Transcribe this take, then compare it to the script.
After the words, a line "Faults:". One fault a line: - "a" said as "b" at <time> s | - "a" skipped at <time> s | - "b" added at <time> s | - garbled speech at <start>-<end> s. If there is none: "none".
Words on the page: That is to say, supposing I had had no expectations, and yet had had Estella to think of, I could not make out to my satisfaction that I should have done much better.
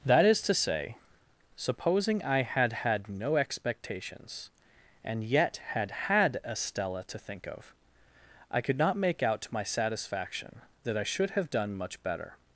That is to say, supposing I had had no expectations, and yet had had Estella to think of, I could not make out to my satisfaction that I should have done much better.
Faults:
none